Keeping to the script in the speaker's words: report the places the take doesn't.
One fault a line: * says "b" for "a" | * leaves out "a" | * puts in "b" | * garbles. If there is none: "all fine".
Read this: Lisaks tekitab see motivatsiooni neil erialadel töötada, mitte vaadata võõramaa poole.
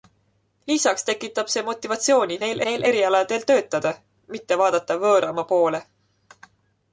* puts in "neil"